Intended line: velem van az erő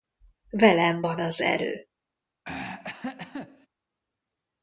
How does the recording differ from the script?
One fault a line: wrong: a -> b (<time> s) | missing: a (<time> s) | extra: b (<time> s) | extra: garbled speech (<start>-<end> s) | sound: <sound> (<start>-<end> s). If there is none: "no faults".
sound: throat clearing (2.4-3.7 s)